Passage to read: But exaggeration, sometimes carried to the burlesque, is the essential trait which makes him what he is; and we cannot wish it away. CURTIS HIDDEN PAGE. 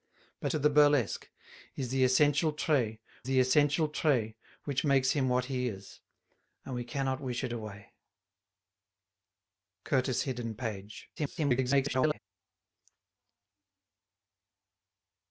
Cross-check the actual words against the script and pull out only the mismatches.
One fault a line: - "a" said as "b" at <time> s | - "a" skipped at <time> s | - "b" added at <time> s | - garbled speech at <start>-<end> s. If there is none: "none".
- "exaggeration sometimes carried to" said as "to the burlesque is" at 0.5 s
- "burlesque is" said as "essential trait" at 2.0 s
- garbled speech at 11.2-12.2 s